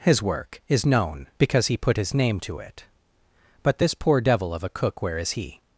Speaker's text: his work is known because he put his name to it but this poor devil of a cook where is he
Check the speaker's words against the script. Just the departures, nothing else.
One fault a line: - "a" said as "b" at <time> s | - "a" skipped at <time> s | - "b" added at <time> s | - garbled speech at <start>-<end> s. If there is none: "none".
none